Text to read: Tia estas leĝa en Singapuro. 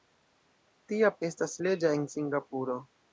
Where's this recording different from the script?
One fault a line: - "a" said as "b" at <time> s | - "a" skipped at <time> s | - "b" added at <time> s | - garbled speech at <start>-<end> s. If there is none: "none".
none